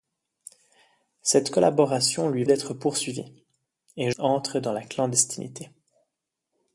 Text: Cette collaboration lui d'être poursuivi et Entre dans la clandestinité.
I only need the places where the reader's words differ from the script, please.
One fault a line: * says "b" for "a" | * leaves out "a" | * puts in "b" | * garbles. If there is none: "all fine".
all fine